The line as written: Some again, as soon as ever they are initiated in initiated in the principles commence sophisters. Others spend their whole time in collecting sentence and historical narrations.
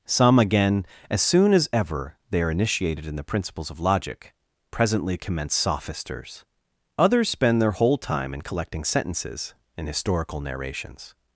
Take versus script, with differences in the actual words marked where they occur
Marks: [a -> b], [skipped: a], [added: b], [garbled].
Some again, as soon as ever they are initiated in [initiated in the principles -> the principles of logic presently] commence sophisters. Others spend their whole time in collecting [sentence -> sentences] and historical narrations.